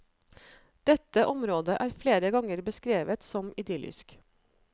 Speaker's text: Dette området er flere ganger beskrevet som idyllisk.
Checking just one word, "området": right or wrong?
right